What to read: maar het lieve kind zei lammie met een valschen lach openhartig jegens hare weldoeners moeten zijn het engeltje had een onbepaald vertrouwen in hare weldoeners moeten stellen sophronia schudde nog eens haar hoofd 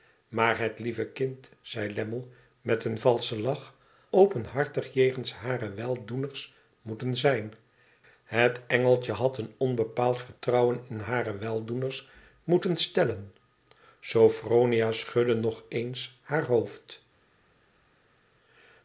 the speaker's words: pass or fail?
pass